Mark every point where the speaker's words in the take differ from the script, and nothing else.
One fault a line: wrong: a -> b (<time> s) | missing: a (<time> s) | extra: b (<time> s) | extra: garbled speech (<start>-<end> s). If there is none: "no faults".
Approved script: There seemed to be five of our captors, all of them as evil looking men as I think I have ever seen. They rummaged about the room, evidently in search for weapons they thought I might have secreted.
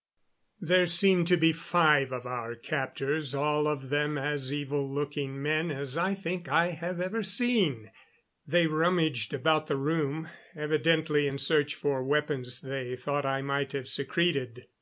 no faults